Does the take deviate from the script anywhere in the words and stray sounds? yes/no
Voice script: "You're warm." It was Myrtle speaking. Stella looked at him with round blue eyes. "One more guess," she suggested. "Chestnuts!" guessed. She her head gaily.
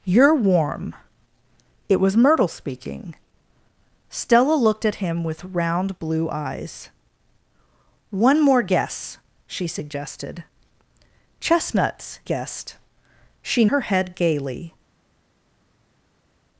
no